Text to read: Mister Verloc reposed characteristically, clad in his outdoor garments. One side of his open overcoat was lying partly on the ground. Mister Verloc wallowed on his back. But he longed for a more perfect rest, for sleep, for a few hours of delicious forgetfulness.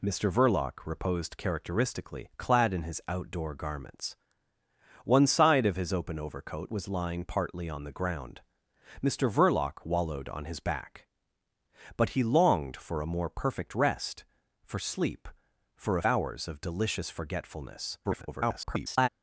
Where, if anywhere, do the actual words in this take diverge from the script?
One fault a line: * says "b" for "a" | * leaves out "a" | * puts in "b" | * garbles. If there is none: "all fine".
* leaves out "few"
* garbles